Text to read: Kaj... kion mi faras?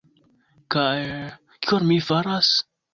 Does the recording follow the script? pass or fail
pass